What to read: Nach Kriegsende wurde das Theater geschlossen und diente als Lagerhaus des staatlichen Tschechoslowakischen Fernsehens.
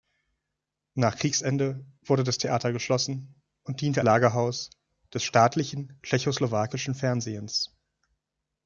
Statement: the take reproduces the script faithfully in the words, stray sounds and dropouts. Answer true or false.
false